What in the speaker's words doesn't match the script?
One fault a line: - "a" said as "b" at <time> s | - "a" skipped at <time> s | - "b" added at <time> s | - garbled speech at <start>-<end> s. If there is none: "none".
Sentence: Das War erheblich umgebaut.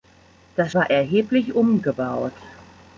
none